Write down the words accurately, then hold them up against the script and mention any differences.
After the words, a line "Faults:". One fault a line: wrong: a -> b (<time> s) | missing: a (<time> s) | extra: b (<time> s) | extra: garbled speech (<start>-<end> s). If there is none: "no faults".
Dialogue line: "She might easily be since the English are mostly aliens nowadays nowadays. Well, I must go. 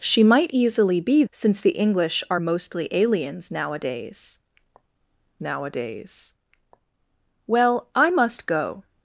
"She might easily be since the English are mostly aliens nowadays nowadays. Well, I must go.
Faults:
no faults